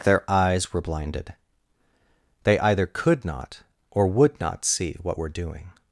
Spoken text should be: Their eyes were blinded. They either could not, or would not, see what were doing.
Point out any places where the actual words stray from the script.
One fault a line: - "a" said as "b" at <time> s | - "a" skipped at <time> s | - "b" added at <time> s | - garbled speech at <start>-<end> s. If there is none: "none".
none